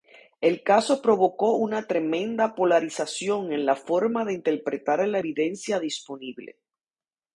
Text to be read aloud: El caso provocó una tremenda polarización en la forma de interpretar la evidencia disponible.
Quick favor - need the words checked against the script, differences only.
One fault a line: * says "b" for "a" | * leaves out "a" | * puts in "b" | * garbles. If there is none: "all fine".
all fine